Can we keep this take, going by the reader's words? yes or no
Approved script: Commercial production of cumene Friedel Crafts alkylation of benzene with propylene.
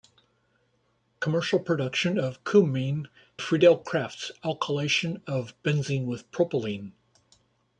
yes